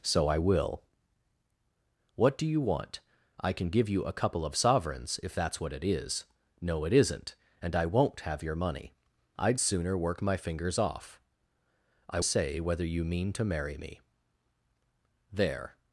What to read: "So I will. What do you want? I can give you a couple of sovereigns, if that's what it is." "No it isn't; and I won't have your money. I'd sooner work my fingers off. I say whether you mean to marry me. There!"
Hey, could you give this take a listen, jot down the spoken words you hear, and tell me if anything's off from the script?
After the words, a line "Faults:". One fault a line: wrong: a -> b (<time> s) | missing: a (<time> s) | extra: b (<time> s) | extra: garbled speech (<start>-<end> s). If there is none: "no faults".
"So I will. What do you want? I can give you a couple of sovereigns, if that's what it is." "No it isn't; and I won't have your money. I'd sooner work my fingers off. I say whether you mean to marry me. There!"
Faults:
no faults